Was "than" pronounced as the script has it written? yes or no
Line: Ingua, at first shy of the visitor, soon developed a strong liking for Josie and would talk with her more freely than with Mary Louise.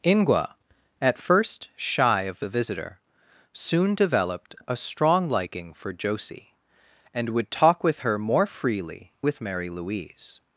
no